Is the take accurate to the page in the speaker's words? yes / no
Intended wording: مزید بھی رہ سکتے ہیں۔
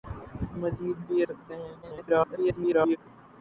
no